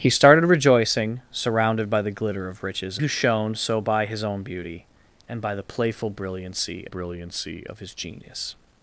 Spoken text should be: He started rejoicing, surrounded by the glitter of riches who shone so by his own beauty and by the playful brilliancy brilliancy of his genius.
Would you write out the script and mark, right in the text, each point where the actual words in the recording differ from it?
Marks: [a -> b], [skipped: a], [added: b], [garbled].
He started rejoicing, surrounded by the glitter of riches who shone so by his own beauty and by the playful brilliancy brilliancy of his genius.